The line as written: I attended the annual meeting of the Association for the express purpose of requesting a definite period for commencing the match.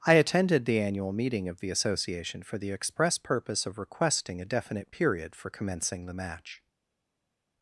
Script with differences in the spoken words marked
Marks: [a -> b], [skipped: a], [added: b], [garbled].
I attended the annual meeting of the Association for the express purpose of requesting a definite period for commencing the match.